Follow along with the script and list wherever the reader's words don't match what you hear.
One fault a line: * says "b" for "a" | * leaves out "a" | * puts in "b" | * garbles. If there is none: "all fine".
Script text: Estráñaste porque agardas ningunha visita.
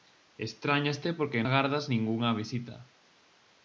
all fine